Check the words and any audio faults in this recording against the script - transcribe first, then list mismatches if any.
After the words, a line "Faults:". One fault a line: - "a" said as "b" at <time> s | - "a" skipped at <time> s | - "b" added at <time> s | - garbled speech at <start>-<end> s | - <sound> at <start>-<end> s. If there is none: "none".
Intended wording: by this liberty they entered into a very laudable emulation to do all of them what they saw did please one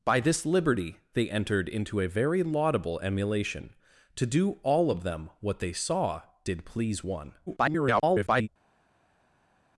by this liberty they entered into a very laudable emulation to do all of them what they saw did please one [garbled]
Faults:
- garbled speech at 7.5-8.5 s